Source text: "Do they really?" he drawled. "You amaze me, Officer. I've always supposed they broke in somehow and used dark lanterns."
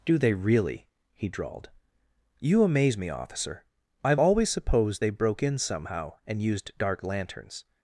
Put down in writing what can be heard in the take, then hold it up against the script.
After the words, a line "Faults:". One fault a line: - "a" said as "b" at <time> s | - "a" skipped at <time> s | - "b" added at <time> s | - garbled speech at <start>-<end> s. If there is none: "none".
"Do they really?" he drawled. "You amaze me, Officer. I've always supposed they broke in somehow and used dark lanterns."
Faults:
none